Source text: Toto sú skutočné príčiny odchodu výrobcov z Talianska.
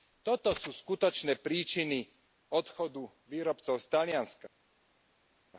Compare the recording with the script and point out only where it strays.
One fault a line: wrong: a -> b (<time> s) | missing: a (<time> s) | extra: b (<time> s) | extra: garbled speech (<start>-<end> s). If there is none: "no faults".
no faults